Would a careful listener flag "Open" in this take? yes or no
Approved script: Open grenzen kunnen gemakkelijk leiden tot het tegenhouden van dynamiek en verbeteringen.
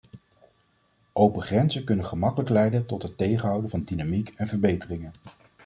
no